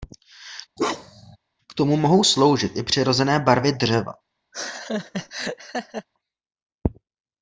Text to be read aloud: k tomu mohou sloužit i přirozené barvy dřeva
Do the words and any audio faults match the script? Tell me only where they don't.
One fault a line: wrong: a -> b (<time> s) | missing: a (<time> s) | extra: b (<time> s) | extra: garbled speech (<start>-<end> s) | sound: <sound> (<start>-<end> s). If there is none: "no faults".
sound: bark (0.8-1.4 s)
sound: laugh (4.5-6.1 s)